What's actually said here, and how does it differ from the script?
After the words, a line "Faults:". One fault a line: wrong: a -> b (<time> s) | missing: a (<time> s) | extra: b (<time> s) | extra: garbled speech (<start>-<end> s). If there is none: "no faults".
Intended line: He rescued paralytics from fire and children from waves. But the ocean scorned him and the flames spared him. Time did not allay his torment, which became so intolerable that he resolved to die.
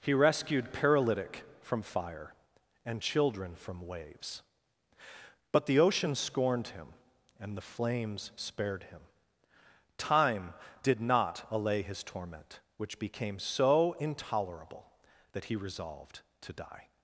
He rescued paralytic from fire and children from waves. But the ocean scorned him and the flames spared him. Time did not allay his torment, which became so intolerable that he resolved to die.
Faults:
wrong: paralytics -> paralytic (0.7 s)